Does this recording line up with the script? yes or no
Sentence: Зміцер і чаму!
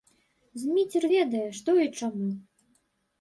no